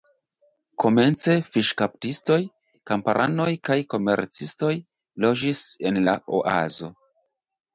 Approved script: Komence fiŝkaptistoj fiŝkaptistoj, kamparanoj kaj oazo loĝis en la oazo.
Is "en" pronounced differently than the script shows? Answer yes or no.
no